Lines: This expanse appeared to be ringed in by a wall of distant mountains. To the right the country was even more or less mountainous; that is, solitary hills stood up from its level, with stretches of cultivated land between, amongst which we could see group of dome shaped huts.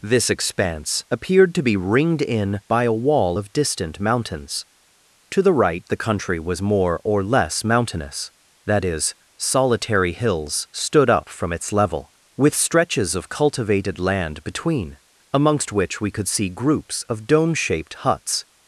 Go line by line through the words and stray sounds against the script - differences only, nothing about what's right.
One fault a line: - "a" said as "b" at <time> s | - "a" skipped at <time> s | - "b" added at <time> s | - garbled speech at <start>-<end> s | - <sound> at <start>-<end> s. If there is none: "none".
- "even" skipped at 6.6 s
- "group" said as "groups" at 16.5 s